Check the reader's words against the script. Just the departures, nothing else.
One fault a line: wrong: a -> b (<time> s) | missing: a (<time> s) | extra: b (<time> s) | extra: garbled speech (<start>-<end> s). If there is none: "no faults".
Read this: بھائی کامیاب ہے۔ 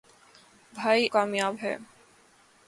no faults